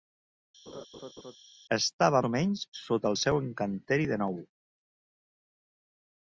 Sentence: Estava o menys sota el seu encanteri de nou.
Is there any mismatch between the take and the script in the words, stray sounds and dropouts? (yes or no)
yes